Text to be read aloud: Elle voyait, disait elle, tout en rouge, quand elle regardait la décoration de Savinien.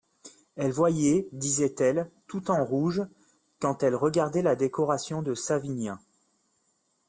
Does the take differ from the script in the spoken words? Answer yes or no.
no